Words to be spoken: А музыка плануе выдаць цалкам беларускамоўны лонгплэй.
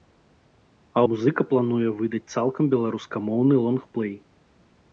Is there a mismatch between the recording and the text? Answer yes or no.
no